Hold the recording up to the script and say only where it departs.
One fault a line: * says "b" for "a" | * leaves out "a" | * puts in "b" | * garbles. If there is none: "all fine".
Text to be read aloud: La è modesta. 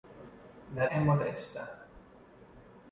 all fine